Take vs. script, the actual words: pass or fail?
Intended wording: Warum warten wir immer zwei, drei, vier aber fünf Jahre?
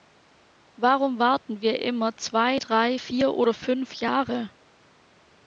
fail